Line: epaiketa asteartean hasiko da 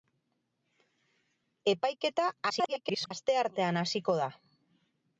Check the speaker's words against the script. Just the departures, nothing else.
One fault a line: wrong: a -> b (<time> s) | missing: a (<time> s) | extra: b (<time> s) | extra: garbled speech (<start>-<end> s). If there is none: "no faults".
extra: garbled speech (2.5-3.1 s)